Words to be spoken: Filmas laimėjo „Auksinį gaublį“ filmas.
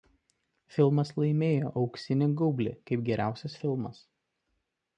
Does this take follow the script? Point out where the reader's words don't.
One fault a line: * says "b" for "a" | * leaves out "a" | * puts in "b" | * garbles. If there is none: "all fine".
* puts in "kaip geriausias"